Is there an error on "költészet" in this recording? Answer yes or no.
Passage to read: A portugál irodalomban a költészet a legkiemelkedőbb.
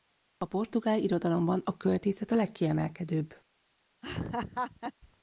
no